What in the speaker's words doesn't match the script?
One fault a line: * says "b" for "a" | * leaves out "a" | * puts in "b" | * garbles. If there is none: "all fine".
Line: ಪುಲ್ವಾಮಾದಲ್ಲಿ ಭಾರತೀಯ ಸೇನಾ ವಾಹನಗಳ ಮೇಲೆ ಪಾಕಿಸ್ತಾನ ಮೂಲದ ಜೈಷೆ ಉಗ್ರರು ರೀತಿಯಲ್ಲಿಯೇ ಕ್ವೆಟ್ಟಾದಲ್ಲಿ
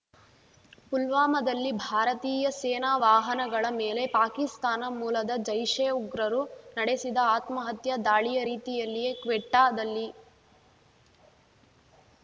* puts in "ನಡೆಸಿದ ಆತ್ಮಹತ್ಯಾ ದಾಳಿಯ"